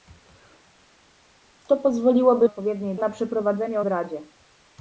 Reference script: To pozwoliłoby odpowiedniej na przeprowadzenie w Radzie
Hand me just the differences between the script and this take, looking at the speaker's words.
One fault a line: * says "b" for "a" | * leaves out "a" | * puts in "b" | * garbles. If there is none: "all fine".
all fine